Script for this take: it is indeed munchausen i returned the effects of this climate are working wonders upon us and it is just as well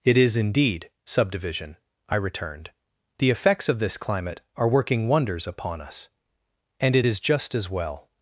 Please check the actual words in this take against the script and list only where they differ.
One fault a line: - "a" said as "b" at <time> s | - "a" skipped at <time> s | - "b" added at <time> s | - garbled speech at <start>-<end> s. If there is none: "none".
- "munchausen" said as "subdivision" at 1.1 s